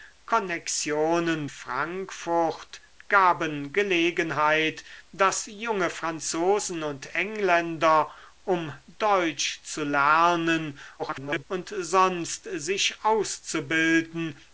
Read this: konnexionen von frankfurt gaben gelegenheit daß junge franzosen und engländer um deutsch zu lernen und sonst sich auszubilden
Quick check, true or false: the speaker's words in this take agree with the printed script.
false